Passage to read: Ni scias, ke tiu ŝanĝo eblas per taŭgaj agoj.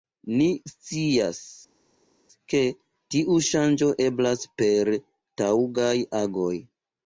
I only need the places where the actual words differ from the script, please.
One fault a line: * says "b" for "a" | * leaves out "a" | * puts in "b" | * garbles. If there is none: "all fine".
all fine